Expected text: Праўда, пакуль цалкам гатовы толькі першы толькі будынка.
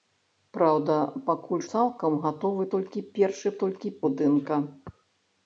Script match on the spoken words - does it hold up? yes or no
yes